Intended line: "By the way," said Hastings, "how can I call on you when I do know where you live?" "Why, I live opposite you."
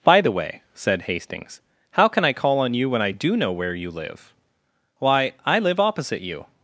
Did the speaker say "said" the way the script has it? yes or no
yes